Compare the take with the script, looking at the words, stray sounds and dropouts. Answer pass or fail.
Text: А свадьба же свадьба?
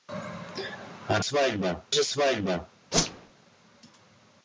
fail